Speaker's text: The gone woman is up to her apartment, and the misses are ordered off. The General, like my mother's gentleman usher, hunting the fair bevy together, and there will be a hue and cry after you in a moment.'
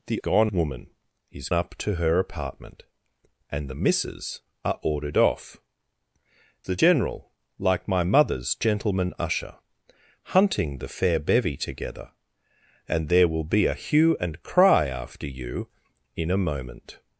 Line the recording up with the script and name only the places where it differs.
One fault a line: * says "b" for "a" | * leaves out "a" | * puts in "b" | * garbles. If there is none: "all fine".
all fine